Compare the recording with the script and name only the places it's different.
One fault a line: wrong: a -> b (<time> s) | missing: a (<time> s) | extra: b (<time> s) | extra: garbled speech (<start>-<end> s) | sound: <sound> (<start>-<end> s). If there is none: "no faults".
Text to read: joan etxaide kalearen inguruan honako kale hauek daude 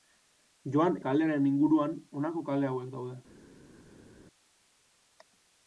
missing: etxaide (1.0 s)